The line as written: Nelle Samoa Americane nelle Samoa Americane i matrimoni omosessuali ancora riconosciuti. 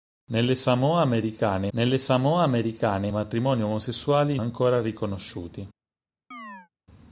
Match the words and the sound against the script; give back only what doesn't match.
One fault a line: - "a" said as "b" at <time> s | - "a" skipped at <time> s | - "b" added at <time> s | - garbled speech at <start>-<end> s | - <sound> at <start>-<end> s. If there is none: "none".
- chirp at 6.3-6.7 s